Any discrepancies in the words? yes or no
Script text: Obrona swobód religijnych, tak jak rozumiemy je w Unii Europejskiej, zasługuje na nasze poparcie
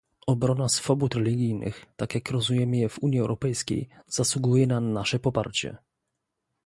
no